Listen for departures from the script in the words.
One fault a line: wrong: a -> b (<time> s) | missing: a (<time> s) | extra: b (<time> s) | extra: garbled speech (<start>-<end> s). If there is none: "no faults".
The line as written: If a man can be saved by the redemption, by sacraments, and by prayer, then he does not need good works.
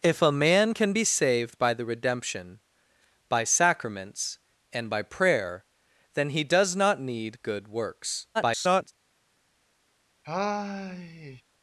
extra: garbled speech (8.3-8.9 s)